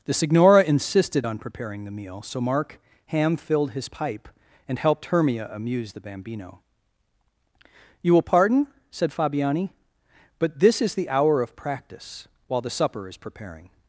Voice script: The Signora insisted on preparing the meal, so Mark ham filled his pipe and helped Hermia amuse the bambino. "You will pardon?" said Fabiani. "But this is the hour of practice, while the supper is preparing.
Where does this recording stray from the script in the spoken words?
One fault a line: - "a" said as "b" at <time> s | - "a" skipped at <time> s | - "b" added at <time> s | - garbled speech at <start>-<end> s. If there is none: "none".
none